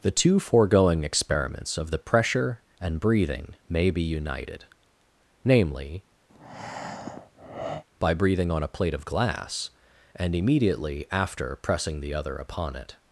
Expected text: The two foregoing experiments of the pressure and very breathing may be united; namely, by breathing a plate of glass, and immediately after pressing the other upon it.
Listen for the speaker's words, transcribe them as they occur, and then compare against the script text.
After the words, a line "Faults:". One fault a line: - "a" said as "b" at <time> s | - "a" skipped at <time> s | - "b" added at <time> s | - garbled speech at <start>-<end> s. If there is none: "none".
The two foregoing experiments of the pressure and breathing may be united; namely, by breathing on a plate of glass, and immediately after pressing the other upon it.
Faults:
- "very" skipped at 3.0 s
- "on" added at 8.5 s